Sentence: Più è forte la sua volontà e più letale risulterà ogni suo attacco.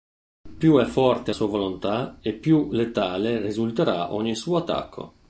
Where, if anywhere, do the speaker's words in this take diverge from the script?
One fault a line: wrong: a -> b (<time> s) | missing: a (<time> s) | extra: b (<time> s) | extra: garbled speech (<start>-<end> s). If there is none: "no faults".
missing: la (1.3 s)